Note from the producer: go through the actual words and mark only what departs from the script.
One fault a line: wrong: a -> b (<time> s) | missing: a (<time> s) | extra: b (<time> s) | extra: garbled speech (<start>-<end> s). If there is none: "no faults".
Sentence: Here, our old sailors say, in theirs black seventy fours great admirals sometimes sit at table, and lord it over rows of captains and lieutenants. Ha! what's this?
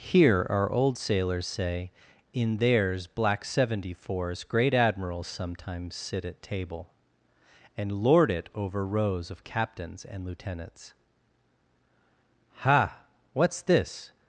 no faults